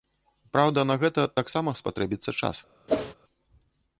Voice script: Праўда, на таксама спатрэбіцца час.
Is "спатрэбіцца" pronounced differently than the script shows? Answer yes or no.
no